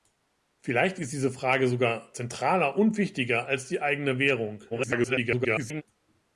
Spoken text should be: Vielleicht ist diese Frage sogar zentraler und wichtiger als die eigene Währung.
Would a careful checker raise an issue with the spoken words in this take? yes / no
yes